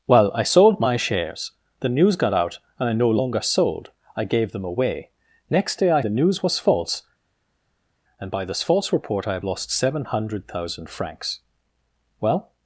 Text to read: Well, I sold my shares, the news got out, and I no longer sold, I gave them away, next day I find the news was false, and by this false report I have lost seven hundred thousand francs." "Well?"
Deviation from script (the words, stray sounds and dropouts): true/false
true